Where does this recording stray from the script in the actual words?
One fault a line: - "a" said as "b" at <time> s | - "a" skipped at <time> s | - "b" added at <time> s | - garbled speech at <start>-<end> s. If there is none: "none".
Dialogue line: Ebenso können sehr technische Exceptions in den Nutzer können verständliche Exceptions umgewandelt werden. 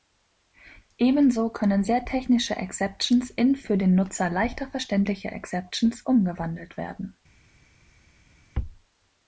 - "für" added at 3.5 s
- "können" said as "leichter" at 4.3 s